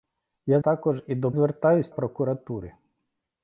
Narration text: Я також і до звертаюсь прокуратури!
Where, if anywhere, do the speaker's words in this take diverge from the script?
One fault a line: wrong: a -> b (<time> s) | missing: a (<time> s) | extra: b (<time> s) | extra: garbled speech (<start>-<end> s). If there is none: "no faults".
no faults